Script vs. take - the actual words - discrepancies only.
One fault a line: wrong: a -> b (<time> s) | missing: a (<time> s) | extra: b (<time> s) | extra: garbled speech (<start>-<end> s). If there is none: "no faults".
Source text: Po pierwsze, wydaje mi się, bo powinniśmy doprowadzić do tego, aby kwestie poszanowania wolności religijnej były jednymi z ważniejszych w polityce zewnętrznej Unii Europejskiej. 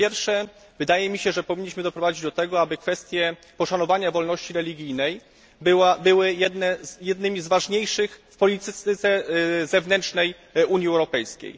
wrong: bo -> że (1.3 s)